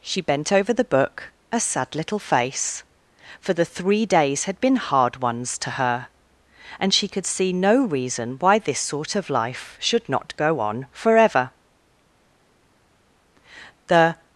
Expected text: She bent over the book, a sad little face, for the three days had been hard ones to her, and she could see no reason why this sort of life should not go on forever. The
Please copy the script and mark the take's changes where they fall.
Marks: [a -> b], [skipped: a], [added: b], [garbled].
She bent over the book, a sad little face, for the three days had been hard ones to her, and she could see no reason why this sort of life should not go on forever. The